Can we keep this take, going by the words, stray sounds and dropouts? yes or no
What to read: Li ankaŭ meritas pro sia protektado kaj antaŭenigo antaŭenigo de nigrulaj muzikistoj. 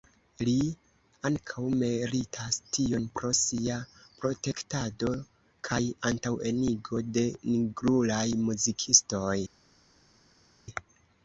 no